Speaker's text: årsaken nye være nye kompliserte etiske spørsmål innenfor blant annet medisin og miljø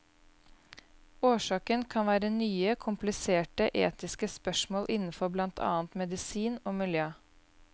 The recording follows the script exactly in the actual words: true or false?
false